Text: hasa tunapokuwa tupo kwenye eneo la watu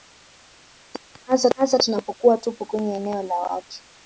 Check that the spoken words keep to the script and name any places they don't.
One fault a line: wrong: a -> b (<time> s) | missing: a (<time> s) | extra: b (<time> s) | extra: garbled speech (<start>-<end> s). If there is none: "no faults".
extra: hasa (1.5 s)